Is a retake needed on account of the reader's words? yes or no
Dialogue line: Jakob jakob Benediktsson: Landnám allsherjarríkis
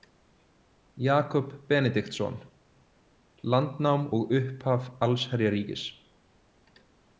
yes